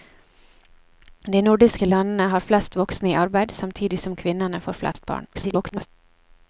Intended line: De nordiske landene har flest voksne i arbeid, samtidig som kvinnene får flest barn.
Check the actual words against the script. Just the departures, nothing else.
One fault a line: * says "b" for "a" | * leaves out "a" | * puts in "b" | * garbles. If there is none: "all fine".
* garbles